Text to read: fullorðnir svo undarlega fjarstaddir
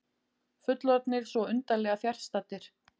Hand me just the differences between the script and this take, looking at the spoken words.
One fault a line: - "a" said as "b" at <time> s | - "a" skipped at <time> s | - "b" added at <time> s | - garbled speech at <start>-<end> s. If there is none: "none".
none